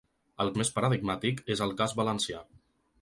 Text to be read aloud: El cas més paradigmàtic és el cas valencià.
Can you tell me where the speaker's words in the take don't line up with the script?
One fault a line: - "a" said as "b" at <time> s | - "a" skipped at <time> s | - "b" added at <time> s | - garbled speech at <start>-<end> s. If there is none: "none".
- "cas" skipped at 0.5 s